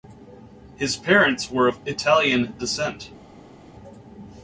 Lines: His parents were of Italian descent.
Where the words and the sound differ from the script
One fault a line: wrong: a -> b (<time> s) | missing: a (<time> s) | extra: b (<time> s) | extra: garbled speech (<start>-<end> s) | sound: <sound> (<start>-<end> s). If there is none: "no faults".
no faults